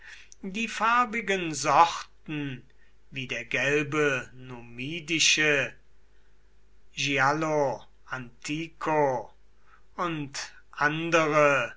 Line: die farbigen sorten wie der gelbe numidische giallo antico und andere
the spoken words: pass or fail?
pass